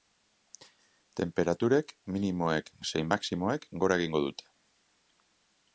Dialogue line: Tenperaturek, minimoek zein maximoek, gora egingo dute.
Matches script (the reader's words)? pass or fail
pass